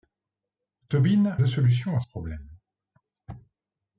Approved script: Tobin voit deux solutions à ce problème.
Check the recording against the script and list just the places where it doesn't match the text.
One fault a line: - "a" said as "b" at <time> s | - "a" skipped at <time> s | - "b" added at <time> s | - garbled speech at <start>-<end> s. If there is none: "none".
- "voit" skipped at 1.4 s